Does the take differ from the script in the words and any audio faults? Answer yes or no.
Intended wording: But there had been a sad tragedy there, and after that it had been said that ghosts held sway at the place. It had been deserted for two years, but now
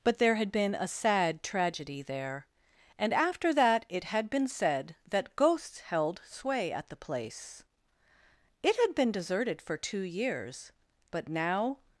no